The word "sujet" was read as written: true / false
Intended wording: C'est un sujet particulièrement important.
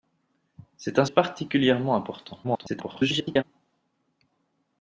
false